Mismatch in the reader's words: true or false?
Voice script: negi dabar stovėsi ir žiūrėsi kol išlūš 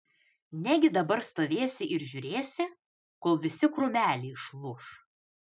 true